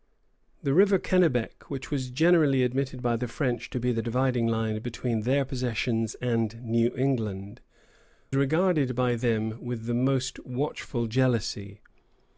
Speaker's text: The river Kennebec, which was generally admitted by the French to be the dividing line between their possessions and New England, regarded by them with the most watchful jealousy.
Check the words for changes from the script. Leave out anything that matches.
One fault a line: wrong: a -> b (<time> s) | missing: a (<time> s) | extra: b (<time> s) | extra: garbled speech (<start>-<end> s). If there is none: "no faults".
no faults